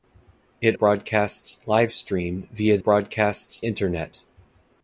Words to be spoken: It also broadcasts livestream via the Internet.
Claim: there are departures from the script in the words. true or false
true